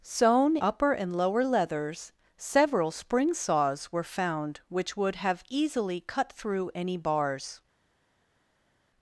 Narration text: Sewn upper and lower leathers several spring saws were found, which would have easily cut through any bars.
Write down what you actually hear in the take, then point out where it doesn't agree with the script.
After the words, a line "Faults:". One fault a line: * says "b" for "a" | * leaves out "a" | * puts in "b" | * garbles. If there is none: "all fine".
Sewn upper and lower leathers several spring saws were found, which would have easily cut through any bars.
Faults:
all fine